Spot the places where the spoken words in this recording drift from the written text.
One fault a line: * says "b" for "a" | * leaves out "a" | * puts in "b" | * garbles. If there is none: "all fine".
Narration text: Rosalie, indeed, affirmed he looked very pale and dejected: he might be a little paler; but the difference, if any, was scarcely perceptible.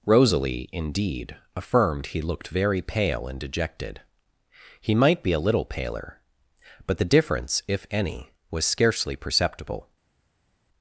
all fine